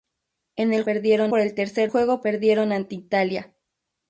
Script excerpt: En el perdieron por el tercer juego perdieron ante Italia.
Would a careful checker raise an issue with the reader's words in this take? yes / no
no